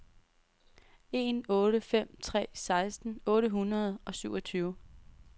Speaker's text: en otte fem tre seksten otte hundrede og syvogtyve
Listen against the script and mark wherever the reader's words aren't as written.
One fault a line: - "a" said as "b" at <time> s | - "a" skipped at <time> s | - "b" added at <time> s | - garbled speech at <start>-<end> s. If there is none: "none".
none